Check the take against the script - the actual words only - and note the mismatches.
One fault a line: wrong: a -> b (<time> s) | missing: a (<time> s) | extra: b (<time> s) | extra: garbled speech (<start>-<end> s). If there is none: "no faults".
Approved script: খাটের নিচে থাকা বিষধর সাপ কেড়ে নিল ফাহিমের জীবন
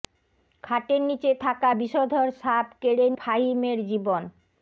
missing: নিল (3.1 s)